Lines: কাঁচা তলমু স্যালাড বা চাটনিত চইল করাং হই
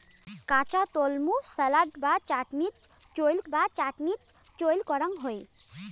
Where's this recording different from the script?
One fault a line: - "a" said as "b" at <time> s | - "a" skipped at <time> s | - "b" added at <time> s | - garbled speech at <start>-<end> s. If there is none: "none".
- "বা চাটনিত চইল" added at 3.5 s